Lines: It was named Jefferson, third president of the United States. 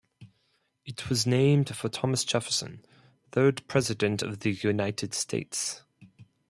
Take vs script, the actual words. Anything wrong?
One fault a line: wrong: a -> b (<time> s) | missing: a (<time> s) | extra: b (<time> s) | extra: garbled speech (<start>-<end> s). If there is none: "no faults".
extra: for Thomas (1.8 s)